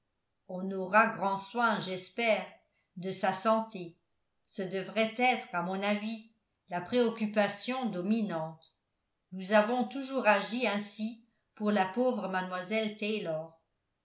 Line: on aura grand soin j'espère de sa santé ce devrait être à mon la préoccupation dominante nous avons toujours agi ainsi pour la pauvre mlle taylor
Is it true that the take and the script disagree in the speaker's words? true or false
true